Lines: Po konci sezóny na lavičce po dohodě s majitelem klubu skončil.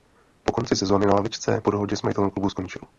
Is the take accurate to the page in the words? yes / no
yes